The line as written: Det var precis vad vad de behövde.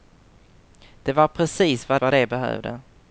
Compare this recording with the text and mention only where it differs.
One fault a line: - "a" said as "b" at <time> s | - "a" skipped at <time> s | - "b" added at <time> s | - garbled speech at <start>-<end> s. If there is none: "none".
none